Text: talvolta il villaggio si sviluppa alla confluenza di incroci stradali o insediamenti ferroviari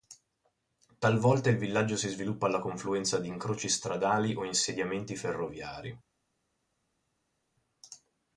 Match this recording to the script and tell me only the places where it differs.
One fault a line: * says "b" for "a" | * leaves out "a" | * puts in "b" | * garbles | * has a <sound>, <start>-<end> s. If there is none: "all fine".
all fine